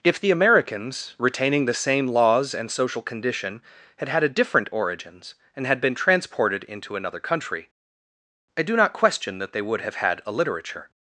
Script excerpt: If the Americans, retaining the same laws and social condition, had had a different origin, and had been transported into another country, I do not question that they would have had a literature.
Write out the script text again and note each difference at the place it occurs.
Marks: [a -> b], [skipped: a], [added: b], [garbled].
If the Americans, retaining the same laws and social condition, had had a different [origin, -> origins] and had been transported into another country, I do not question that they would have had a literature.